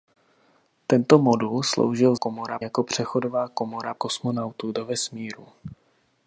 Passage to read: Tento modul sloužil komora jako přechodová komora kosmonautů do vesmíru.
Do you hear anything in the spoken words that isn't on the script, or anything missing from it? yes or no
no